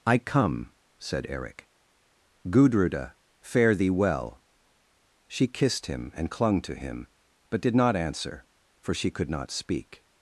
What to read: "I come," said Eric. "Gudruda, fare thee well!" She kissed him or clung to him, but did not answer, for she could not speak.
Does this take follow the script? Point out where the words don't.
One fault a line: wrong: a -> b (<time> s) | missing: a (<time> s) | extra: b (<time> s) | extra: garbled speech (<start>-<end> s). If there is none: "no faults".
wrong: or -> and (6.1 s)